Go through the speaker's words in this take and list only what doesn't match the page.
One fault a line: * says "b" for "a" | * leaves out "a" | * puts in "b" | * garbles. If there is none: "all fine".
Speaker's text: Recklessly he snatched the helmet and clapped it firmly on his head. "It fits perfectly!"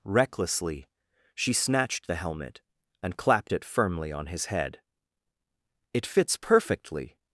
* says "she" for "he"